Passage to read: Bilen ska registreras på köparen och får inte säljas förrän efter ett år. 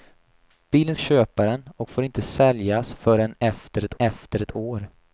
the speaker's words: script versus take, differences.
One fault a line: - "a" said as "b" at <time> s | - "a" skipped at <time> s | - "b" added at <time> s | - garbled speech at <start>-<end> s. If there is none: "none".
- "ska registreras på" skipped at 0.9 s
- "efter ett" added at 4.0 s